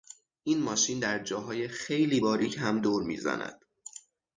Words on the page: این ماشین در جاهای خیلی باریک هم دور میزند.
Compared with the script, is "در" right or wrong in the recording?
right